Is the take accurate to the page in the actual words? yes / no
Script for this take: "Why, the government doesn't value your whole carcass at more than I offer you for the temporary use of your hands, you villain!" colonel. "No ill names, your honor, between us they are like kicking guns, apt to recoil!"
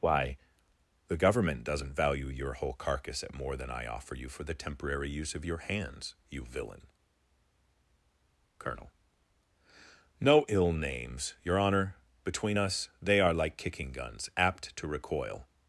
yes